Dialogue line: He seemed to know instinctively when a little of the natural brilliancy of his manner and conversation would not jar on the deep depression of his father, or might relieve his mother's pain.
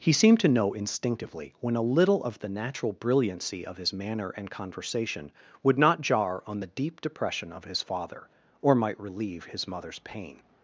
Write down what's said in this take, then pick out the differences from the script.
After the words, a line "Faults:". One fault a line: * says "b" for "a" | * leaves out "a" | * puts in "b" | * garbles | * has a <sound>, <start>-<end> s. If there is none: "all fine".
He seemed to know instinctively when a little of the natural brilliancy of his manner and conversation would not jar on the deep depression of his father, or might relieve his mother's pain.
Faults:
all fine